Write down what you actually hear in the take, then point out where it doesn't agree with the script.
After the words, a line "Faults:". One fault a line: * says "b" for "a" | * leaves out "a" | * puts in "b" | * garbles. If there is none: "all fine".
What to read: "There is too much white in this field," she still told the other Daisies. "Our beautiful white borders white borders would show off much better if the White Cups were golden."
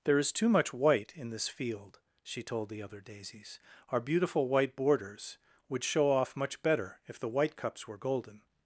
"There is too much white in this field," she told the other Daisies. "Our beautiful white borders would show off much better if the White Cups were golden."
Faults:
* leaves out "still"
* leaves out "white borders"